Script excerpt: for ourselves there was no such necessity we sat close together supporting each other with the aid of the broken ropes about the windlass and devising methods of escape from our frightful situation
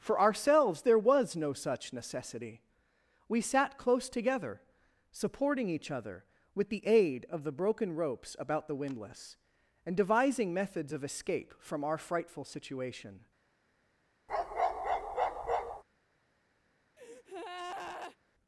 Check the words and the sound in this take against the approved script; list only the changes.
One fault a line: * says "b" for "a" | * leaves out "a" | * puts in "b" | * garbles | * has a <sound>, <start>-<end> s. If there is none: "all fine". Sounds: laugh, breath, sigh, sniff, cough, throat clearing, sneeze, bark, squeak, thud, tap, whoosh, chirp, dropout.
* has a bark, 14.3-15.8 s
* has a breath, 17.0-18.2 s